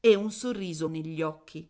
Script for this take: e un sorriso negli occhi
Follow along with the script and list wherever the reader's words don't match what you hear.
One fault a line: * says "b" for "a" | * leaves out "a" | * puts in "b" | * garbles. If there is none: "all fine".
all fine